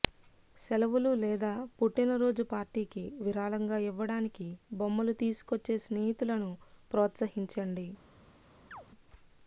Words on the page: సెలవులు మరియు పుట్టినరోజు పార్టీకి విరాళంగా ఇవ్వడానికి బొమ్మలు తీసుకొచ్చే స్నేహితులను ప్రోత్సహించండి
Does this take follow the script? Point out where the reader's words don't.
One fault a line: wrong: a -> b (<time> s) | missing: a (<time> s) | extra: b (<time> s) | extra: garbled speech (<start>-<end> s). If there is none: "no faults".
wrong: మరియు -> లేదా (1.1 s)